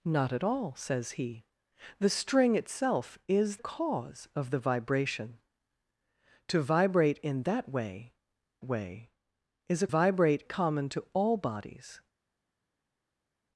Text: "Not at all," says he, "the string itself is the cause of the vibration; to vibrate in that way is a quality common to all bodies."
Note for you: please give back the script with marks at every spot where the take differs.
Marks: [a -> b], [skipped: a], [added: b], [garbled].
"Not at all," says he, "the string itself is [skipped: the] cause of the vibration; to vibrate in that way [added: way] is a [quality -> vibrate] common to all bodies."